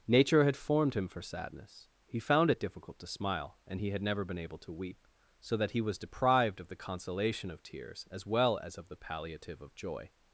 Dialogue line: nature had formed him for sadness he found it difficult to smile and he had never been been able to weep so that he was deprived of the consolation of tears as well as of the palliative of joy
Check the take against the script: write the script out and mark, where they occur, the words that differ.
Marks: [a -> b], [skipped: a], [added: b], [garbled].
nature had formed him for sadness he found it difficult to smile and he had never been [skipped: been] able to weep so that he was deprived of the consolation of tears as well as of the palliative of joy